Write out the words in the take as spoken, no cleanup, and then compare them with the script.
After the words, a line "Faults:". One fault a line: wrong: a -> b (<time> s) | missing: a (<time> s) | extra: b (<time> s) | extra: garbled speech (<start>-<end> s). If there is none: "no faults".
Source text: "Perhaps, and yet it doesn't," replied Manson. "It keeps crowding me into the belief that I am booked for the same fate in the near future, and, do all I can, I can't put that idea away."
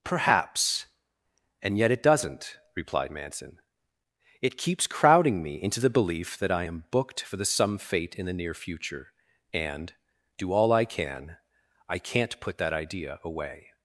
"Perhaps, and yet it doesn't," replied Manson. "It keeps crowding me into the belief that I am booked for the some fate in the near future, and, do all I can, I can't put that idea away."
Faults:
wrong: same -> some (7.4 s)